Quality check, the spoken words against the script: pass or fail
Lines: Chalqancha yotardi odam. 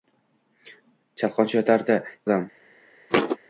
pass